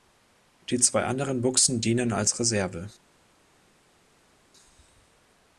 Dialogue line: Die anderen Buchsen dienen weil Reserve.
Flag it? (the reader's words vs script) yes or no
yes